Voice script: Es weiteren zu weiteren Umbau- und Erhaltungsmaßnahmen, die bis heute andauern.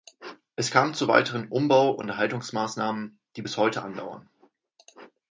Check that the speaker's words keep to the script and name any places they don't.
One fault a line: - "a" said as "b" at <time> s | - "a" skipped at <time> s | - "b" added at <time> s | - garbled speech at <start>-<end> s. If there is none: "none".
- "weiteren" said as "kam" at 0.7 s